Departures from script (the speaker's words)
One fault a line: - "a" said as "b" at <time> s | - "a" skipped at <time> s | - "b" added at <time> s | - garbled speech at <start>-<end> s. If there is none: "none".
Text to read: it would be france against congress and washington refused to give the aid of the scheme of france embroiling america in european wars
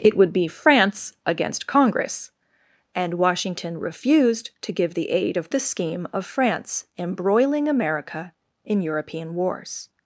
none